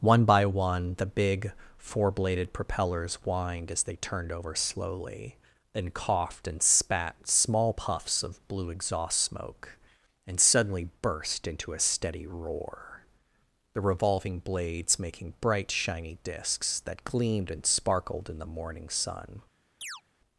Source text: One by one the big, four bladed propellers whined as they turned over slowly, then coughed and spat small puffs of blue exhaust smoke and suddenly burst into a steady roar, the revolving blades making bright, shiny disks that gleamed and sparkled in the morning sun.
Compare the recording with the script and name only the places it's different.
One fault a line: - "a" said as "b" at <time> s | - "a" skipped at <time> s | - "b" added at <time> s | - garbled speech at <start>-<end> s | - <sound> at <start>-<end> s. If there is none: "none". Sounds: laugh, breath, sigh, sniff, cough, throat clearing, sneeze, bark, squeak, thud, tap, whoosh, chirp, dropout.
- chirp at 19.8-20.0 s